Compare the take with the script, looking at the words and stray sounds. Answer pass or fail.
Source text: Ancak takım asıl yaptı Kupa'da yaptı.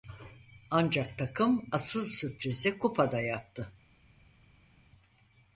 fail